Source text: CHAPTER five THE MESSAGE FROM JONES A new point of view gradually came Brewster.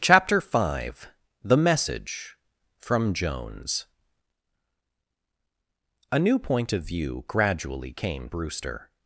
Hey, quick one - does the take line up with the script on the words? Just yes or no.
yes